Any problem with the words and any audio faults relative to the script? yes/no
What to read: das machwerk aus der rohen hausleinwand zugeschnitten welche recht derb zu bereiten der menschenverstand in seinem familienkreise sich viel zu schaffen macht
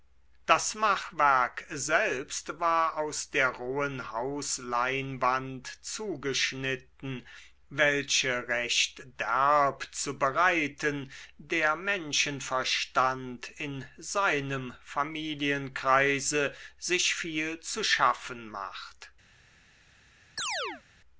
yes